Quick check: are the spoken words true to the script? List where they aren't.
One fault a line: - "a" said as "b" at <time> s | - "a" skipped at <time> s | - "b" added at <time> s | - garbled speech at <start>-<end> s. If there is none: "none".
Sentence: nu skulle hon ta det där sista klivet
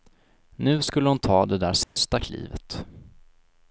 none